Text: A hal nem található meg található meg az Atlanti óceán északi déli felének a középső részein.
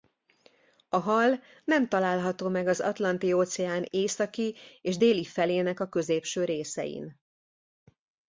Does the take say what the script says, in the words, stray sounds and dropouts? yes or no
no